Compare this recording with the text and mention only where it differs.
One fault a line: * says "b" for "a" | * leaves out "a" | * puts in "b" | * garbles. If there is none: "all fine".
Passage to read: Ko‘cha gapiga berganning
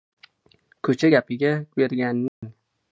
all fine